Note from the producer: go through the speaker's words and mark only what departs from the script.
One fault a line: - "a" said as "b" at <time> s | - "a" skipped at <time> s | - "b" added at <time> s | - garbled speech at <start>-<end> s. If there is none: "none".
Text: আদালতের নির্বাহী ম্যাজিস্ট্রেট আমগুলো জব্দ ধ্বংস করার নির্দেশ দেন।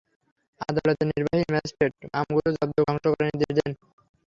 none